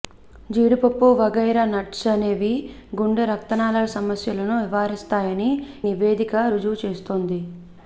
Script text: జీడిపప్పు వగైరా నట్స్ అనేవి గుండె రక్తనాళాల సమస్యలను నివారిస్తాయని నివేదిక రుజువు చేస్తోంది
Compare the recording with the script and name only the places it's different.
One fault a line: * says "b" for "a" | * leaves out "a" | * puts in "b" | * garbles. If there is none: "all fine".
all fine